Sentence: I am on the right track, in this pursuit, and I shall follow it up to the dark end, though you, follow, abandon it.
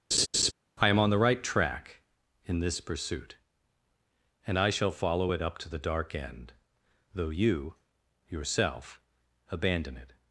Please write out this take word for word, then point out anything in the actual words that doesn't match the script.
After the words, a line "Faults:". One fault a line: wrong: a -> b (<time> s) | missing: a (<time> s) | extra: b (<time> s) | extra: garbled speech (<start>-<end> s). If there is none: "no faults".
I am on the right track, in this pursuit, and I shall follow it up to the dark end, though you, yourself, abandon it.
Faults:
wrong: follow -> yourself (8.3 s)